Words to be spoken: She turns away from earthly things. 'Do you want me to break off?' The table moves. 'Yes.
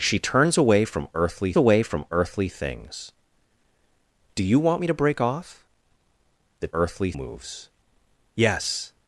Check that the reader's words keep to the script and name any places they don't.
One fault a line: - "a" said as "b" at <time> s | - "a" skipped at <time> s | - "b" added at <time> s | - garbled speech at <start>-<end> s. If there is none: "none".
- "away from earthly" added at 1.6 s
- "table" said as "earthly" at 6.7 s